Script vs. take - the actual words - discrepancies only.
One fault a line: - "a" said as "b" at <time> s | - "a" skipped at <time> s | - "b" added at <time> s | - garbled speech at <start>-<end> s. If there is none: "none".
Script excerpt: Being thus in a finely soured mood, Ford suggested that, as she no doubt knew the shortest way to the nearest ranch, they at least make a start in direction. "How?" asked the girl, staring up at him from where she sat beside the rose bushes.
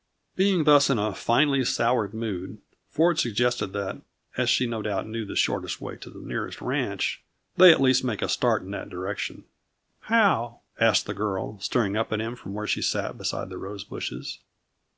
- "that" added at 8.7 s